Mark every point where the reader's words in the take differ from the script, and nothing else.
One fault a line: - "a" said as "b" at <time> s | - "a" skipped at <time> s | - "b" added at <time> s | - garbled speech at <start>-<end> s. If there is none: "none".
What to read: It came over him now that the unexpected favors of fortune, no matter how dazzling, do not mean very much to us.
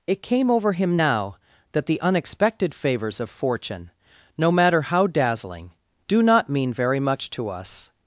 none